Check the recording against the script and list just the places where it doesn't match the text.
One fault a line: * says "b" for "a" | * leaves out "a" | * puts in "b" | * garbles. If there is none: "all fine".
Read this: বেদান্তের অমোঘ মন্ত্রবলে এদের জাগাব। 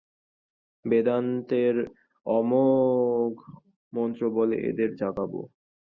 all fine